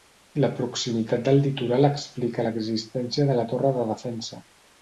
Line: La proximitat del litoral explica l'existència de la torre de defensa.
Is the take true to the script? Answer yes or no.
yes